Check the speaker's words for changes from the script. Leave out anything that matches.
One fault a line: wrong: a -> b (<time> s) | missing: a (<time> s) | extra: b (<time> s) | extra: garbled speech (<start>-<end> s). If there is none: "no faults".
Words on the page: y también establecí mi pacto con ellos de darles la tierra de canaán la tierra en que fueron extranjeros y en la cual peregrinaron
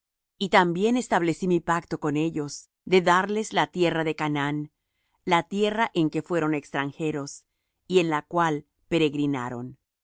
no faults